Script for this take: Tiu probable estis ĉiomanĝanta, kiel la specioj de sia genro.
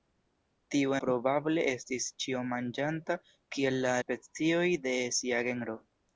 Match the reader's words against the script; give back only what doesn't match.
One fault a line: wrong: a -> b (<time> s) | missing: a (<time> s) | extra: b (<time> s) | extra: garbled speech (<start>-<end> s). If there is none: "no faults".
no faults